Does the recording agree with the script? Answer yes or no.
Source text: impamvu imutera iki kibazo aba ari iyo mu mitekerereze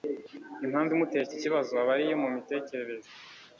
yes